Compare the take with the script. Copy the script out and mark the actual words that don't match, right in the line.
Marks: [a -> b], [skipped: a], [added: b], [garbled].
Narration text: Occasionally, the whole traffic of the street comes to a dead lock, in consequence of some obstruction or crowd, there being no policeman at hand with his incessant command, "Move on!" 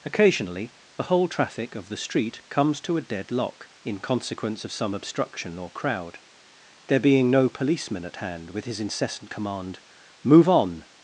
Occasionally, the whole traffic of the street comes to a dead lock, in consequence of some obstruction or crowd, there being no policeman at hand with his incessant command, "Move on!"